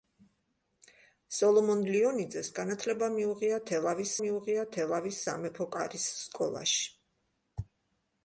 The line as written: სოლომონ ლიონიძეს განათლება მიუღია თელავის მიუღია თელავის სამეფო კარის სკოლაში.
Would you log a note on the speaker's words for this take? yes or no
no